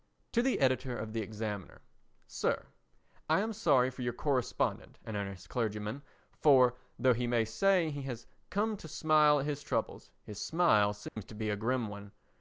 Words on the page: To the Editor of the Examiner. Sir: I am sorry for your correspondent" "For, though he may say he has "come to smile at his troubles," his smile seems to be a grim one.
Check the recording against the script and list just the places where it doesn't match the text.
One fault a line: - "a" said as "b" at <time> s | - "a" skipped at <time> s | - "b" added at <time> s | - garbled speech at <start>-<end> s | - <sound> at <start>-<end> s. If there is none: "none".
- "An Earnest Clergyman" added at 5.0 s
- dropout at 11.1-11.2 s